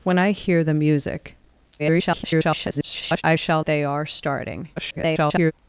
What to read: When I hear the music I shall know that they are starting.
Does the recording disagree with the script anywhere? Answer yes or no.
yes